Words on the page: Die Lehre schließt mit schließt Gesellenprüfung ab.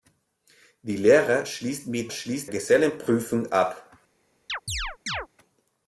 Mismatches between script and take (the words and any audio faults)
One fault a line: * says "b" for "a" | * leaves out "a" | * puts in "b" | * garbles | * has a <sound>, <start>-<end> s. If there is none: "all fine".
* has a chirp, 4.5-5.3 s